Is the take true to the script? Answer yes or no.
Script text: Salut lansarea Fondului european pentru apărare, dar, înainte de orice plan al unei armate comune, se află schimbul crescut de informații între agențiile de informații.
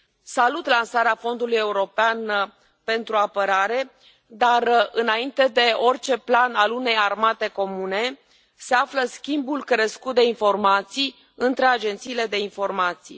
yes